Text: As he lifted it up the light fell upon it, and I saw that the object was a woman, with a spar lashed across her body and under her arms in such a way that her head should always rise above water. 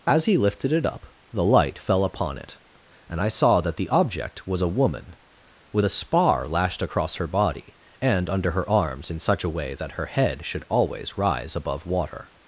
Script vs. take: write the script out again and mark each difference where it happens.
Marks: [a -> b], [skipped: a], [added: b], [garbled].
As he lifted it up the light fell upon it, and I saw that the object was a woman, with a spar lashed across her body and under her arms in such a way that her head should always rise above water.